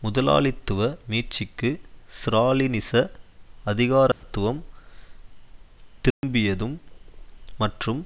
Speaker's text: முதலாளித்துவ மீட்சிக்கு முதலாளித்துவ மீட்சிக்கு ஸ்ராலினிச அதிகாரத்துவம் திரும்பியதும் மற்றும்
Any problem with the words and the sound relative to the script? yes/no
yes